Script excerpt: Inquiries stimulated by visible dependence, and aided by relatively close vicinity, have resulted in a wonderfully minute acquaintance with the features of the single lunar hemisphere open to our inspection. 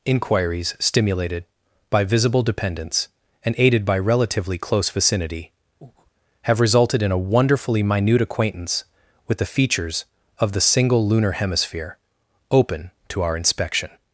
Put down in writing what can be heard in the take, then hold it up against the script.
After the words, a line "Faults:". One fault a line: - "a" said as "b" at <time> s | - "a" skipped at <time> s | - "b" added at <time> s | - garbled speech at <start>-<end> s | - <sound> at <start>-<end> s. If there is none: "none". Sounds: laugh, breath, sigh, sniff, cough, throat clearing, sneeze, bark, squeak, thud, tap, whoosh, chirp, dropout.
Inquiries stimulated by visible dependence, and aided by relatively close vicinity, have resulted in a wonderfully minute acquaintance with the features of the single lunar hemisphere open to our inspection.
Faults:
- breath at 5.8-6.1 s